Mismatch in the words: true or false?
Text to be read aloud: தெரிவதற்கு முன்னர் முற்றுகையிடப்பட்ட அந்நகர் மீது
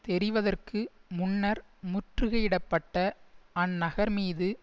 false